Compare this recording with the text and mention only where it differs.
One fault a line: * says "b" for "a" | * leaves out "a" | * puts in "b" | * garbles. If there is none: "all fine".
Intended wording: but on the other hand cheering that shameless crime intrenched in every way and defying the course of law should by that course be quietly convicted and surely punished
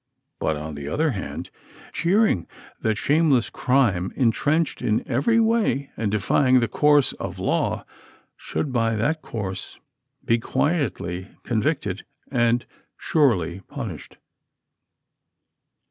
all fine